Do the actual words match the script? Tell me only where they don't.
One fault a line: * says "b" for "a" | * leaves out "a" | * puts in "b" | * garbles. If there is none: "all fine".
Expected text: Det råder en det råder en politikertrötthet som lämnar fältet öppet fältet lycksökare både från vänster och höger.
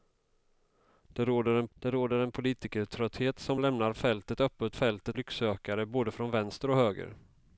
all fine